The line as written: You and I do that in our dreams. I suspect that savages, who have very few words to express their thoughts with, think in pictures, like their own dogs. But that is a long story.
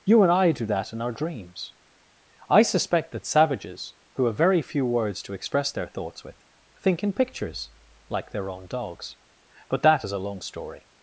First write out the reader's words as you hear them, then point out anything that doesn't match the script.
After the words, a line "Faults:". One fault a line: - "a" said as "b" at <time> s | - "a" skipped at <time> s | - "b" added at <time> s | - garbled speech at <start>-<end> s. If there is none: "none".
You and I do that in our dreams. I suspect that savages, who have very few words to express their thoughts with, think in pictures, like their own dogs. But that is a long story.
Faults:
none